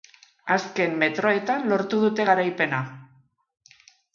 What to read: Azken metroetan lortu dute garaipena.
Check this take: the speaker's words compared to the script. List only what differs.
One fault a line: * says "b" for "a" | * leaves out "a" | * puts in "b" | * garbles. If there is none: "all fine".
all fine